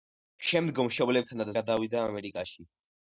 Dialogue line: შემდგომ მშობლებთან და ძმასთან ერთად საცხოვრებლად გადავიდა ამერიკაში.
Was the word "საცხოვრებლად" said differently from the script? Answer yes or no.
yes